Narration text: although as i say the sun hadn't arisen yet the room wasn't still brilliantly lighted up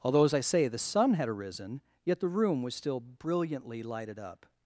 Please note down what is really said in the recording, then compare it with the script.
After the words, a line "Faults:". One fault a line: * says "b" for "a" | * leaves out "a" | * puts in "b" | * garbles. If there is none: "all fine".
although as i say the sun had arisen yet the room was still brilliantly lighted up
Faults:
* says "had" for "hadn't"
* says "was" for "wasn't"